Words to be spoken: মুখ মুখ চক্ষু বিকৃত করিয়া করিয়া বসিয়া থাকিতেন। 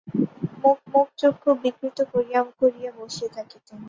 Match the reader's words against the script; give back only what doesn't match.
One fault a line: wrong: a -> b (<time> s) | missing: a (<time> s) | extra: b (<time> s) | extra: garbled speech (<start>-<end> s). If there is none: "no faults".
no faults